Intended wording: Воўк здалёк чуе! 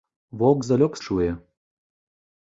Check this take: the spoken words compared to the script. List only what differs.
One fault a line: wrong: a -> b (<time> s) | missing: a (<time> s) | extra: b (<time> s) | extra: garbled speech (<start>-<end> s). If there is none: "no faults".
no faults